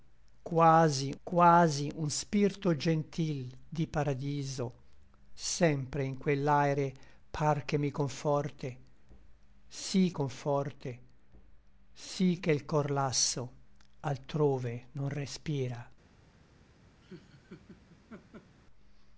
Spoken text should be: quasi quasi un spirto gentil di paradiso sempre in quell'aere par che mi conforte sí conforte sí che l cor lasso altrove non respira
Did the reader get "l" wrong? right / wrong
right